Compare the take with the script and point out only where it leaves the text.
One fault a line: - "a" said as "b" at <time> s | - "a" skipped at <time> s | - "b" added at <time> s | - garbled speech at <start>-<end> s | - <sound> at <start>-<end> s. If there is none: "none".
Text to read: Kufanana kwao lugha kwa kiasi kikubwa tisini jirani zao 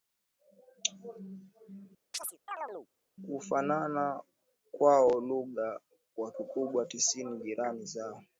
- chirp at 2.1-2.9 s
- "kiasi" skipped at 6.3 s